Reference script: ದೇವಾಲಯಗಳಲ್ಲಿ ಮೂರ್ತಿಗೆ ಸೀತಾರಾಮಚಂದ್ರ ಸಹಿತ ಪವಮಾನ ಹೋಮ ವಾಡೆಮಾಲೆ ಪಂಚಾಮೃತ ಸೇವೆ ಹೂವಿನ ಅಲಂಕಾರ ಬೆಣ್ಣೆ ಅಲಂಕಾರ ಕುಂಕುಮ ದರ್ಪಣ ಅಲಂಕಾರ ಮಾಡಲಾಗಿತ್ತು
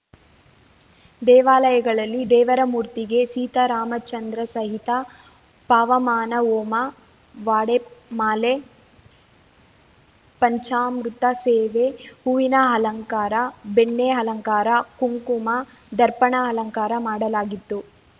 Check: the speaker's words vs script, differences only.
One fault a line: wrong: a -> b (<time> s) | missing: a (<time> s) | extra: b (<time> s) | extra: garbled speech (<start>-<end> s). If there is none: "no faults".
extra: ದೇವರ (2.3 s)